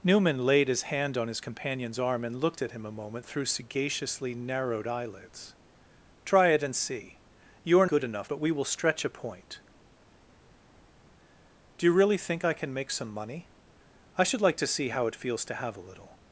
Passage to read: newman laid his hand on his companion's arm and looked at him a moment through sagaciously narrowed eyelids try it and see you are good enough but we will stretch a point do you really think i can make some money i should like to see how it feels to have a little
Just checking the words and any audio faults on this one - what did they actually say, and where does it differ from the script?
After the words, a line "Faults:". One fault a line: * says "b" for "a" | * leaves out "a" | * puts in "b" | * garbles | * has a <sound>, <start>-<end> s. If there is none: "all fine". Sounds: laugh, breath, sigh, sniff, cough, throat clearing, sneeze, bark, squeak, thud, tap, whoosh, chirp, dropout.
newman laid his hand on his companion's arm and looked at him a moment through sagaciously narrowed eyelids try it and see you are good enough but we will stretch a point do you really think i can make some money i should like to see how it feels to have a little
Faults:
all fine